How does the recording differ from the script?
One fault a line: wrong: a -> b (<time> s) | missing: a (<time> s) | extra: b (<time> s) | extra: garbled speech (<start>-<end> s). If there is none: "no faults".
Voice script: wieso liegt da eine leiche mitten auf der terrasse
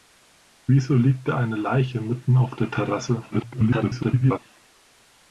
extra: garbled speech (3.3-4.4 s)